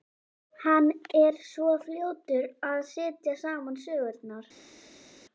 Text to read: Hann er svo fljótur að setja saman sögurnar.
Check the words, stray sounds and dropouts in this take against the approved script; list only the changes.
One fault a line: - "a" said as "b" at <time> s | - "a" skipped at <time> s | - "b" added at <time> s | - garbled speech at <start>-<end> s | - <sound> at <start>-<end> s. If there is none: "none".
none